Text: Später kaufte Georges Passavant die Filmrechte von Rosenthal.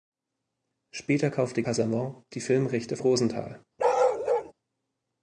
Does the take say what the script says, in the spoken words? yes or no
no